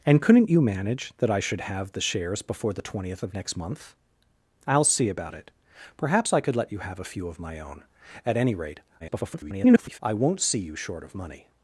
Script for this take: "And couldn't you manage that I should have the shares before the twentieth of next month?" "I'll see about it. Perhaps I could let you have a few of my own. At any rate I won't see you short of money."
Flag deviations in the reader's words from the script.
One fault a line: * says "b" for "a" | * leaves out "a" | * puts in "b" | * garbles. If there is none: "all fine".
* garbles